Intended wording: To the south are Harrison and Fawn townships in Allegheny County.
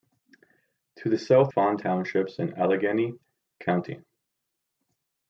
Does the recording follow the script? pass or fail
fail